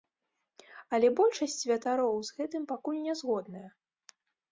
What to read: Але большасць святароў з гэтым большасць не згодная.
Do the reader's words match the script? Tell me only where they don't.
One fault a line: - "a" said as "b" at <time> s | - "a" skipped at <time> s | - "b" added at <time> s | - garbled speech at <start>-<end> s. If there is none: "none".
- "большасць" said as "пакуль" at 2.7 s